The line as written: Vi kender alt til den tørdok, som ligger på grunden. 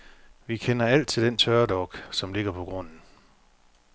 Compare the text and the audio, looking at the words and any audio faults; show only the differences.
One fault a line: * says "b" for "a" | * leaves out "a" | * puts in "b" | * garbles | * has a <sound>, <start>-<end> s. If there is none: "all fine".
all fine